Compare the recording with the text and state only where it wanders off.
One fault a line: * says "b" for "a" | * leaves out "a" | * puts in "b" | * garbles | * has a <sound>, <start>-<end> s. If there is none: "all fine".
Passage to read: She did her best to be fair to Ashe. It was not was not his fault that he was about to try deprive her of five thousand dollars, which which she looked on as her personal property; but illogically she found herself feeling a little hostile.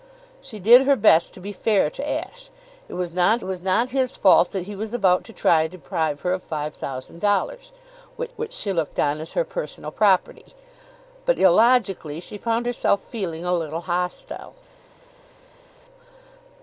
all fine